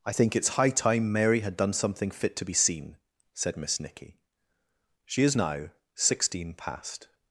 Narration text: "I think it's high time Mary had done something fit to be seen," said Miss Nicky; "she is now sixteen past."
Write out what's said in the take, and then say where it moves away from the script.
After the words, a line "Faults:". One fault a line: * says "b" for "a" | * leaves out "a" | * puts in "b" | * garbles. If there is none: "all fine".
"I think it's high time Mary had done something fit to be seen," said Miss Nicky; "she is now sixteen past."
Faults:
all fine